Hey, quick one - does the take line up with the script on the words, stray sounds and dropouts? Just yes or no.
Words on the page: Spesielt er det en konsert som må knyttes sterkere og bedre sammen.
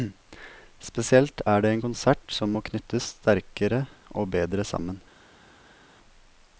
yes